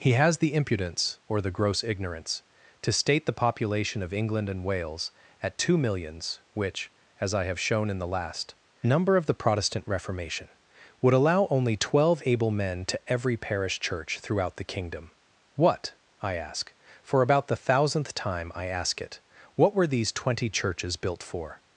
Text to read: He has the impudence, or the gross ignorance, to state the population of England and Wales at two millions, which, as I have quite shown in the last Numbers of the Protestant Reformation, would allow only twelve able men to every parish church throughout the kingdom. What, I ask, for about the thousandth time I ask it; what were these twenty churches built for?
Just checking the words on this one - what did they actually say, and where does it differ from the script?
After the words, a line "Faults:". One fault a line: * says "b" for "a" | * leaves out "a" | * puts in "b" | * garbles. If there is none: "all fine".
He has the impudence, or the gross ignorance, to state the population of England and Wales at two millions, which, as I have shown in the last Number of the Protestant Reformation, would allow only twelve able men to every parish church throughout the kingdom. What, I ask, for about the thousandth time I ask it; what were these twenty churches built for?
Faults:
* leaves out "quite"
* says "Number" for "Numbers"